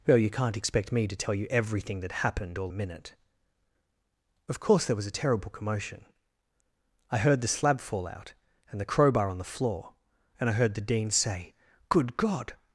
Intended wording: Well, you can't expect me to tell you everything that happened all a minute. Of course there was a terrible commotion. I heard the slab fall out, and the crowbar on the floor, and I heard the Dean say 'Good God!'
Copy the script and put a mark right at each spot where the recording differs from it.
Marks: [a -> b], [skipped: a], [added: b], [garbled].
Well, you can't expect me to tell you everything that happened all a minute. Of course there was a terrible commotion. I heard the slab fall out, and the crowbar on the floor, and I heard the Dean say 'Good God!'